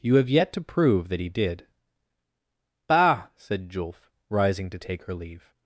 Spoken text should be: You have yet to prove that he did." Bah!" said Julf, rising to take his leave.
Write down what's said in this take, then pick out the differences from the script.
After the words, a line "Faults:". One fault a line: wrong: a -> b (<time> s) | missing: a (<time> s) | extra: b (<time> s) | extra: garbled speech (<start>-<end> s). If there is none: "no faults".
You have yet to prove that he did." Bah!" said Julf, rising to take her leave.
Faults:
wrong: his -> her (5.0 s)